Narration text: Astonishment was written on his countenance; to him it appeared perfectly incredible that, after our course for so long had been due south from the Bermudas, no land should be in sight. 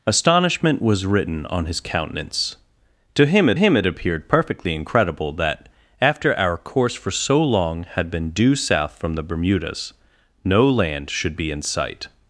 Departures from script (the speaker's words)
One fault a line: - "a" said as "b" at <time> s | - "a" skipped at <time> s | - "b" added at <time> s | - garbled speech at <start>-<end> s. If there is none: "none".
- "him it" added at 3.5 s